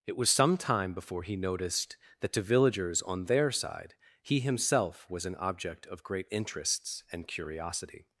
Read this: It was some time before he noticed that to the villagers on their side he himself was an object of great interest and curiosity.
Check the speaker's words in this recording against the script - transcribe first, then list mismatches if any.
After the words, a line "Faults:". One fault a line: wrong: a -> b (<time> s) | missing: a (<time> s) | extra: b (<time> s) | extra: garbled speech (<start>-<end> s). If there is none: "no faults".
It was some time before he noticed that to villagers on their side he himself was an object of great interests and curiosity.
Faults:
missing: the (2.4 s)
wrong: interest -> interests (6.3 s)